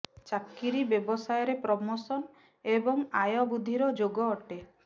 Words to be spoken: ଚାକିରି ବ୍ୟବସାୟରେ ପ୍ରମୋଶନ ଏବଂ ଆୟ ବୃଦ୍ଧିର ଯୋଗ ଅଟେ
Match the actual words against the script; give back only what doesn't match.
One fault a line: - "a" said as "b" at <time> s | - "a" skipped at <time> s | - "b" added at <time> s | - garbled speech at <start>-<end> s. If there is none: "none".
none